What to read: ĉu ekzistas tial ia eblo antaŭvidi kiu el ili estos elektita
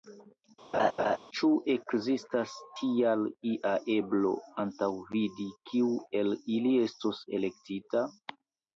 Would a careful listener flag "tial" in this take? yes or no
no